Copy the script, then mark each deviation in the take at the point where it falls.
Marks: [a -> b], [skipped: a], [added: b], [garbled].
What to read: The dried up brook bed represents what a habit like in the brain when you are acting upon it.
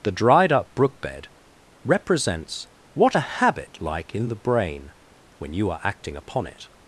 The dried up brook bed represents what a habit like in the brain when you are acting upon it.